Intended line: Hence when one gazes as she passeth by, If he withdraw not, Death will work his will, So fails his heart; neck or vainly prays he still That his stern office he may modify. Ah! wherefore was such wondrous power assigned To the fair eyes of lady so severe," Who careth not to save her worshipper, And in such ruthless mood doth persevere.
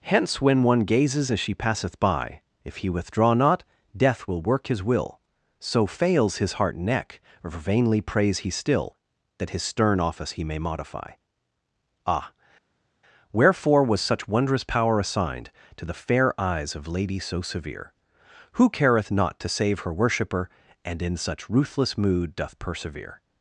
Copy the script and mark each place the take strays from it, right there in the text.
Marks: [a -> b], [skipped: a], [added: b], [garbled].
Hence when one gazes as she passeth by, If he withdraw not, Death will work his will, So fails his heart; neck or vainly prays he still That his stern office he may modify. Ah! wherefore was such wondrous power assigned To the fair eyes of lady so severe," Who careth not to save her worshipper, And in such ruthless mood doth persevere.